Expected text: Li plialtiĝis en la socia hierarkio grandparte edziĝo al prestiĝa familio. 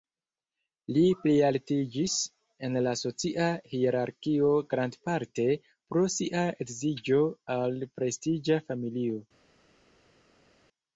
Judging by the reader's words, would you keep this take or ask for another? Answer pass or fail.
fail